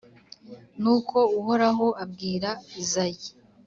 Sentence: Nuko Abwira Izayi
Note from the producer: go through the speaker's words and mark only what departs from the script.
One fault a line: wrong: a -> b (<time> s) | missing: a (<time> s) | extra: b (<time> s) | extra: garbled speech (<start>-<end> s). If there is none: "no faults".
extra: Uhoraho (1.4 s)